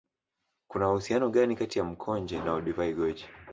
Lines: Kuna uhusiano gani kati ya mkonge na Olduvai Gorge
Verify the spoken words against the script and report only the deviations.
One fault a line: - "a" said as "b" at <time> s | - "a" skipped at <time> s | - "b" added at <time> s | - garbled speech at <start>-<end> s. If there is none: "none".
none